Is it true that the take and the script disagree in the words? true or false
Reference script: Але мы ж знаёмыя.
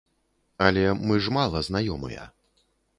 true